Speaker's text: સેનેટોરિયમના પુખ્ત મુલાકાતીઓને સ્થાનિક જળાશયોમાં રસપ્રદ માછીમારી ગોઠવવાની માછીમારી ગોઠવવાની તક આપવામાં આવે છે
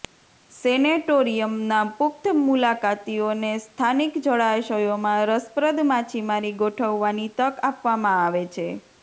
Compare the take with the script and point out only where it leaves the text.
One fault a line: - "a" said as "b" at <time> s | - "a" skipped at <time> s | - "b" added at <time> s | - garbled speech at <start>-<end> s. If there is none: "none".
- "માછીમારી ગોઠવવાની" skipped at 7.3 s